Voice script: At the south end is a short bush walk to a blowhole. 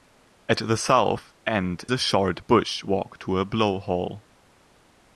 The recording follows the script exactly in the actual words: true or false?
false